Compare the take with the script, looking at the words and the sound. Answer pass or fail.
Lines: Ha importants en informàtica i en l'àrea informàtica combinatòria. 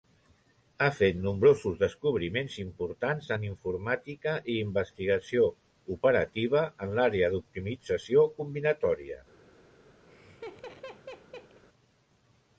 fail